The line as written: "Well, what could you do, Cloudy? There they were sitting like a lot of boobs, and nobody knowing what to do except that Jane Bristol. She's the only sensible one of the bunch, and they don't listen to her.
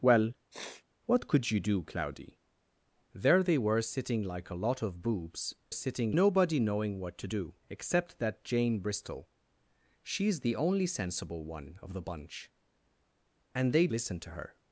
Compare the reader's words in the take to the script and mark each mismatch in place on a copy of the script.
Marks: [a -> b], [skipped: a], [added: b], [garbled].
"Well, what could you do, Cloudy? There they were sitting like a lot of boobs, [and -> sitting] nobody knowing what to do except that Jane Bristol. She's the only sensible one of the bunch, and they [skipped: don't] listen to her.